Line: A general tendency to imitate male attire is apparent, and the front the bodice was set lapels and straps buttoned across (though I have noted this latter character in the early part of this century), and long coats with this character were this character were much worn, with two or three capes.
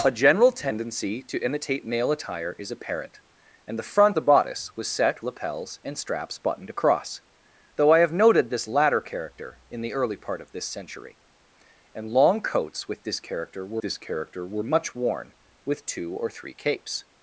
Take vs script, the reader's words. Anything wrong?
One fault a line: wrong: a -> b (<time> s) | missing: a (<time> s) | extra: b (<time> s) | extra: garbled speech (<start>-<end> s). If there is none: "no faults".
no faults